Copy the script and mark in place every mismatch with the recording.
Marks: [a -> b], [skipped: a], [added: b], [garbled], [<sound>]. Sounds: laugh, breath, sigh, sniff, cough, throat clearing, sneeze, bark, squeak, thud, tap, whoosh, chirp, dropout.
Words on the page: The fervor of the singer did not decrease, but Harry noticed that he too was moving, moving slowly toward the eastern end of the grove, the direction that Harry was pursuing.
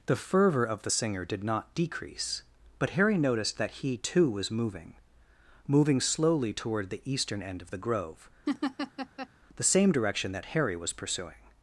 The fervor of the singer did not decrease, but Harry noticed that he too was moving, moving slowly toward the eastern end of the grove, [laugh] the [added: same] direction that Harry was pursuing.